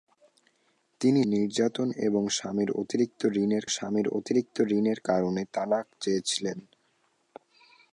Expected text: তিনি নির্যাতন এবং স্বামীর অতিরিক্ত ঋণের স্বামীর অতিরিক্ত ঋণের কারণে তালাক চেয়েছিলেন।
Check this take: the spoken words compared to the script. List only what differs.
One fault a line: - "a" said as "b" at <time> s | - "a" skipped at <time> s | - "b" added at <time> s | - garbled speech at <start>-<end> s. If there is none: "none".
none